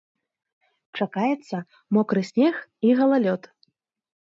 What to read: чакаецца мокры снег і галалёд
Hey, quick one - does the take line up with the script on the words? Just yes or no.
yes